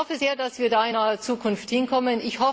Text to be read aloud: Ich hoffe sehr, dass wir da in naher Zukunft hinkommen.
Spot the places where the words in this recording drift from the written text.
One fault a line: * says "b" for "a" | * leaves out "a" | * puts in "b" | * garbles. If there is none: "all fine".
all fine